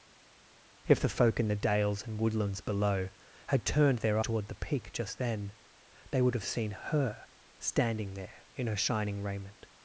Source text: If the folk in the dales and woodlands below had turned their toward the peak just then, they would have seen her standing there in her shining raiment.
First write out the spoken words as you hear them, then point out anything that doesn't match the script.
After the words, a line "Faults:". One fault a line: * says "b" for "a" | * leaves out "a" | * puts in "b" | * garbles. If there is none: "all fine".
If the folk in the dales and woodlands below had turned their toward the peak just then, they would have seen her standing there in her shining raiment.
Faults:
all fine